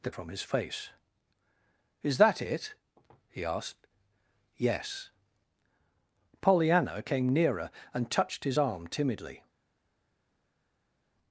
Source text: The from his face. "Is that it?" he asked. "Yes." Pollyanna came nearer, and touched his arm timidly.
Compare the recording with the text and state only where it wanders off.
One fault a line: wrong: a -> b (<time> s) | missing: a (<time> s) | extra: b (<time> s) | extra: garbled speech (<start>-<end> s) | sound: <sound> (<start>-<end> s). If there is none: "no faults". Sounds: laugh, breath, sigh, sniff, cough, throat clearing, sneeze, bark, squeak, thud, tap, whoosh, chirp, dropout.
no faults